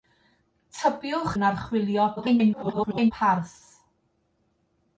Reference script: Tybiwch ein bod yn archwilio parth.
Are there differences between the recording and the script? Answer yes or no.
yes